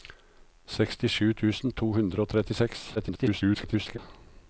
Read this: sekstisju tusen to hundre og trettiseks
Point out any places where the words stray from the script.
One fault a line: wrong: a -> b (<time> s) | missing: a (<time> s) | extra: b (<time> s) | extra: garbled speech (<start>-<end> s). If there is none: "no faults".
extra: garbled speech (3.0-4.0 s)